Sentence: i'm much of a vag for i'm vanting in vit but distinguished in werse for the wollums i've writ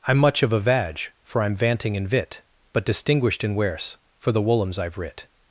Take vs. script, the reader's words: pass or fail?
pass